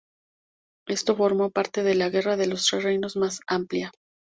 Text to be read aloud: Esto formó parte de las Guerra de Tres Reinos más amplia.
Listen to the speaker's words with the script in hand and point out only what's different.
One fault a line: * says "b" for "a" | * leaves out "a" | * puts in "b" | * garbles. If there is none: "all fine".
* says "la" for "las"
* puts in "los"